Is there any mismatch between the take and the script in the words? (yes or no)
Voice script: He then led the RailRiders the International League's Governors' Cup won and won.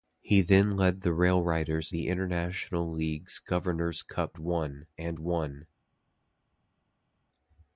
no